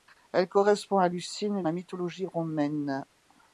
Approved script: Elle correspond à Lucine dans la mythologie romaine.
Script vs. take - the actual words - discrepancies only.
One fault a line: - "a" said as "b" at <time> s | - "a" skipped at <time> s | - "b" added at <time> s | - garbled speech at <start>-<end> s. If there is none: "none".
- "dans" skipped at 1.6 s